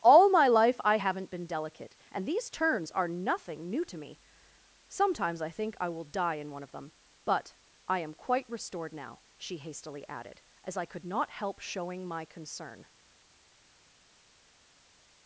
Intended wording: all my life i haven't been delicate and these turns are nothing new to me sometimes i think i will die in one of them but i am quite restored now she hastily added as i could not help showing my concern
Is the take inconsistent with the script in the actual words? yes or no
no